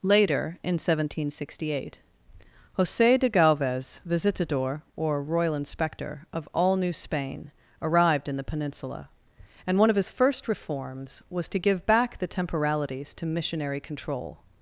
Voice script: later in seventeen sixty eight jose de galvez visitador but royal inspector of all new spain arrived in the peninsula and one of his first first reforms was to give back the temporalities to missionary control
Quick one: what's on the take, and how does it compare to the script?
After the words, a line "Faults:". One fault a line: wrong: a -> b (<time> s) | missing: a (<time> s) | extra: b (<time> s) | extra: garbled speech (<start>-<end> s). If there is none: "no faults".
later in seventeen sixty eight jose de galvez visitador or royal inspector of all new spain arrived in the peninsula and one of his first reforms was to give back the temporalities to missionary control
Faults:
wrong: but -> or (5.0 s)
missing: first (10.5 s)